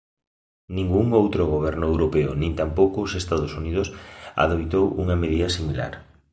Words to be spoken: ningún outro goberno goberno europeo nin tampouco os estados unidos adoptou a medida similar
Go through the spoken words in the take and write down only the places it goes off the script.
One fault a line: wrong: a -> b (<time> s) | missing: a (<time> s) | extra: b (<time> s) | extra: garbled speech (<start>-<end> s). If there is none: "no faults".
missing: goberno (1.9 s)
wrong: a -> unha (5.0 s)